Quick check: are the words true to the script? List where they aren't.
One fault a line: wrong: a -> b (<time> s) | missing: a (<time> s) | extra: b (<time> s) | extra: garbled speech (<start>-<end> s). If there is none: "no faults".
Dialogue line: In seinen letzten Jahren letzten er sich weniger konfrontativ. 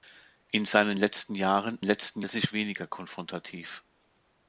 no faults